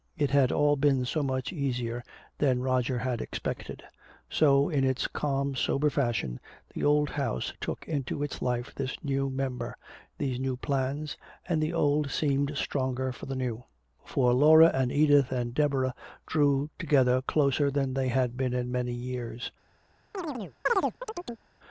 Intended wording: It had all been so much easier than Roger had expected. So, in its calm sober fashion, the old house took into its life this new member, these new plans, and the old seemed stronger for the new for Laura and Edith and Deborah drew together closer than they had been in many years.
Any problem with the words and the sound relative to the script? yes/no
yes